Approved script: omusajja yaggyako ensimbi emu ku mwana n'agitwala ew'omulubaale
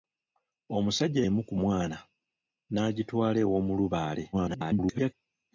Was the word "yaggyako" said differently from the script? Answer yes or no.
yes